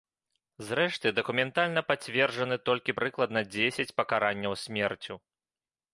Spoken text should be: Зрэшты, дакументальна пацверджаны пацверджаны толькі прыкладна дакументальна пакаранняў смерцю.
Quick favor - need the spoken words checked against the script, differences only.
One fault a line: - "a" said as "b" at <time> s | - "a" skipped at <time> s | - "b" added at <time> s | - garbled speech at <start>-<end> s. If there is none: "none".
- "пацверджаны" skipped at 2.6 s
- "дакументальна" said as "дзесяць" at 3.5 s